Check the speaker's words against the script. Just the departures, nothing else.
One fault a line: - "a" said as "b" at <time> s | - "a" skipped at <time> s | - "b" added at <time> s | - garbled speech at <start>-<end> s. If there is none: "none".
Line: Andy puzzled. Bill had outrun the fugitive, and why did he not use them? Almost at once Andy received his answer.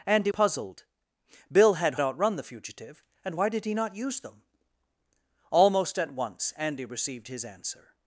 none